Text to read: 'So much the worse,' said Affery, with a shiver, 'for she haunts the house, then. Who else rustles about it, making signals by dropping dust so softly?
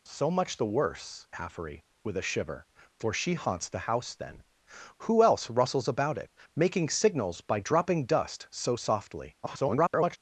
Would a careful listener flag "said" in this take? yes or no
yes